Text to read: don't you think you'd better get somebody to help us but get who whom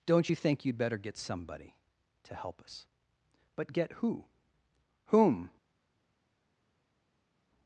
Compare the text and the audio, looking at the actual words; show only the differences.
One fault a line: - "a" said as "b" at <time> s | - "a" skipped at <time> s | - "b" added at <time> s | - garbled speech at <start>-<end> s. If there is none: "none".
none